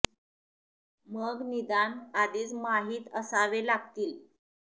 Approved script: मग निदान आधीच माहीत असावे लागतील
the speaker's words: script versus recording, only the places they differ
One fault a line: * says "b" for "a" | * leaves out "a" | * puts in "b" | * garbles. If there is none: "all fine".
all fine